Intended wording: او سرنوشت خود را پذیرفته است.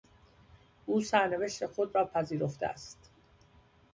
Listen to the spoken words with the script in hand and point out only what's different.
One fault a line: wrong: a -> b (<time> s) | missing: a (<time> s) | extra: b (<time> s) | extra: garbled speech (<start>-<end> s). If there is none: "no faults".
no faults